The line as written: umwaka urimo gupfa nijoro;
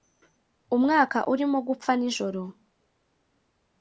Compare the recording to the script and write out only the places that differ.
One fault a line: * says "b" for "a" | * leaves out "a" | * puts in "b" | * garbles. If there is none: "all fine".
all fine